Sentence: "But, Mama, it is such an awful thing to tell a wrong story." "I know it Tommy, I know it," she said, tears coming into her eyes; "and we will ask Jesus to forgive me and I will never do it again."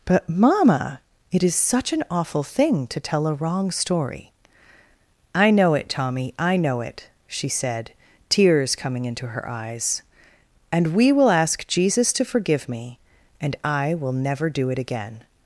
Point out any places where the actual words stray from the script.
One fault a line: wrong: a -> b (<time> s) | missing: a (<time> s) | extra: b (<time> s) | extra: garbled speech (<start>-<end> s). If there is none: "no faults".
no faults